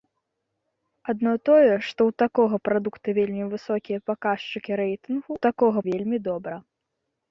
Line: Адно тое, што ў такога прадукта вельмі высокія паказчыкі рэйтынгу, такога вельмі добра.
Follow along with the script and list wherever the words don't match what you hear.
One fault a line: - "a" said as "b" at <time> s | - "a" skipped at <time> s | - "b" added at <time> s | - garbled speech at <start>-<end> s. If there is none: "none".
none